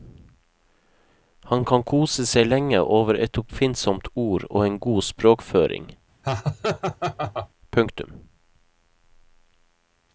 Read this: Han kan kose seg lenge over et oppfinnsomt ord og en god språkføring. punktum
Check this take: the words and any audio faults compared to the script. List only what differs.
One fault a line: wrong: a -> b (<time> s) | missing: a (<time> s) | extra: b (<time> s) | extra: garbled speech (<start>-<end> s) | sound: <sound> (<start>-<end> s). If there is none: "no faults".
sound: laugh (6.2-7.5 s)